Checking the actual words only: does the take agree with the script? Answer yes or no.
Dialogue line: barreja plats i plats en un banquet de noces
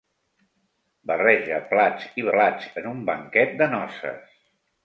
yes